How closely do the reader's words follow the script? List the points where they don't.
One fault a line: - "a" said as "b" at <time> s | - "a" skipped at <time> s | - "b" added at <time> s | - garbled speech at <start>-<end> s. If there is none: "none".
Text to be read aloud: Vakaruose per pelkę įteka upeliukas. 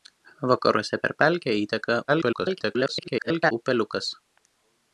- garbled speech at 2.1-3.5 s